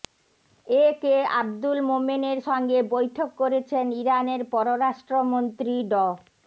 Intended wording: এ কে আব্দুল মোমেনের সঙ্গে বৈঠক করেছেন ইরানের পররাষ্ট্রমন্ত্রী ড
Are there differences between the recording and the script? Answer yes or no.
no